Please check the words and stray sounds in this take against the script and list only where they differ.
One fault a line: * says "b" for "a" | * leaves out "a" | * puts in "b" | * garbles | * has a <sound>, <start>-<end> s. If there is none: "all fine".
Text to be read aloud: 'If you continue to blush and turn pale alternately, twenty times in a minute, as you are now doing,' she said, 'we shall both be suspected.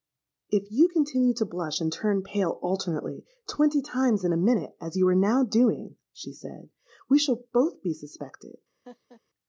* has a laugh, 8.8-9.2 s